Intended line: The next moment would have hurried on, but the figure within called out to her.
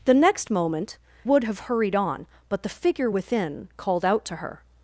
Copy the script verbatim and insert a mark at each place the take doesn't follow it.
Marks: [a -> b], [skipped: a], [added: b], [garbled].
The next moment would have hurried on, but the figure within called out to her.